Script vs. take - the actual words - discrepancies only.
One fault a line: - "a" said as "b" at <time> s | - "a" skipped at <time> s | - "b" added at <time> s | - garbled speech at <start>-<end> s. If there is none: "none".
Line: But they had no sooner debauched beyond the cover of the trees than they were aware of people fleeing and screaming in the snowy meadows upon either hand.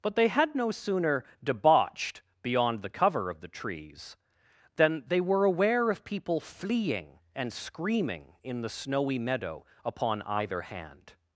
- "meadows" said as "meadow" at 9.2 s